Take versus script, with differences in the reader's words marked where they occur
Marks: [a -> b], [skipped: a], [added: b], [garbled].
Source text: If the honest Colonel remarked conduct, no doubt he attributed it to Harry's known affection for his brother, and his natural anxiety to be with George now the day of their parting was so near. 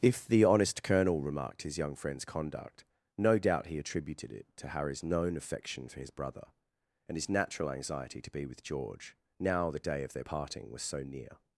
If the honest Colonel remarked [added: his young friend's] conduct, no doubt he attributed it to Harry's known affection for his brother, and his natural anxiety to be with George now the day of their parting was so near.